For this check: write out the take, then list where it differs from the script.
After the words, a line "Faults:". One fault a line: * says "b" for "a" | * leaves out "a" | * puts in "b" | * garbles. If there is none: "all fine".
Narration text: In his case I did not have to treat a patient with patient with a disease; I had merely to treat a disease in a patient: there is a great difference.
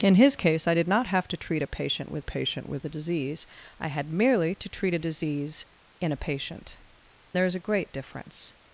In his case I did not have to treat a patient with patient with a disease; I had merely to treat a disease in a patient: there is a great difference.
Faults:
all fine